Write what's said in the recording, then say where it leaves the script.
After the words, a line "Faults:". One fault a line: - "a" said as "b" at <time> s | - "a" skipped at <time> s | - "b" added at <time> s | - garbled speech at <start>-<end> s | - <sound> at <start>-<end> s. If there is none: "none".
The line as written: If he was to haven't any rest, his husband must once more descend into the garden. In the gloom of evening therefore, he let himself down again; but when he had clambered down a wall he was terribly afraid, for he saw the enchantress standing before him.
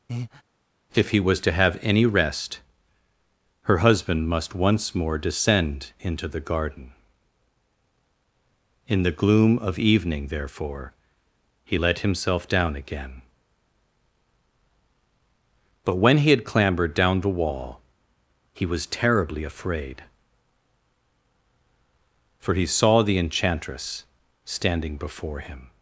If he was to have any rest, her husband must once more descend into the garden. In the gloom of evening therefore, he let himself down again; but when he had clambered down the wall he was terribly afraid, for he saw the enchantress standing before him.
Faults:
- breath at 0.1-0.4 s
- "haven't" said as "have" at 1.5 s
- "his" said as "her" at 3.6 s
- "a" said as "the" at 17.2 s